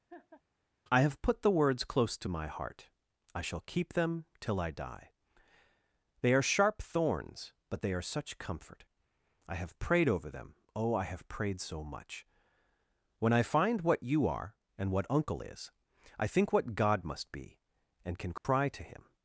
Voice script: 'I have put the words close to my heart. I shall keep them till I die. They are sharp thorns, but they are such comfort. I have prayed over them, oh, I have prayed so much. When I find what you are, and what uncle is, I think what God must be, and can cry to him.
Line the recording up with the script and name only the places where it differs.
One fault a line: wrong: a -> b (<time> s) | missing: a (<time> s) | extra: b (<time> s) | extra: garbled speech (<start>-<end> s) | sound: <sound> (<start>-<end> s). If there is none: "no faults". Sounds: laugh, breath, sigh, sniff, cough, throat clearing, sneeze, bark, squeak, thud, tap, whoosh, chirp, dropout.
sound: laugh (0.1-0.4 s)
sound: dropout (18.4-18.4 s)